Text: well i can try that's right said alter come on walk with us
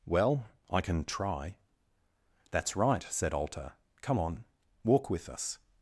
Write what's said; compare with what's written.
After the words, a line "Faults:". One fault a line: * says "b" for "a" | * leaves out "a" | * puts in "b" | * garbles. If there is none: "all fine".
well i can try that's right said alter come on walk with us
Faults:
all fine